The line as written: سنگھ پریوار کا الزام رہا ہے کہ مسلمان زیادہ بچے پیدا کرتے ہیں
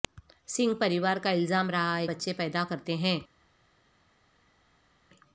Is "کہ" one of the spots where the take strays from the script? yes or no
yes